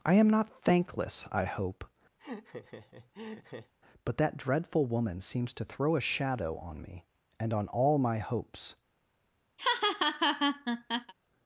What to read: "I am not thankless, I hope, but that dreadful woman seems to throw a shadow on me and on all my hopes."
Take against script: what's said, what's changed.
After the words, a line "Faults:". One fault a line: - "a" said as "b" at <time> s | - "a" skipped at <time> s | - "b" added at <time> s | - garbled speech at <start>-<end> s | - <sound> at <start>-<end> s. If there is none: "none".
"I am not thankless, I hope, but that dreadful woman seems to throw a shadow on me and on all my hopes."
Faults:
- laugh at 2.2-3.7 s
- laugh at 9.6-11.1 s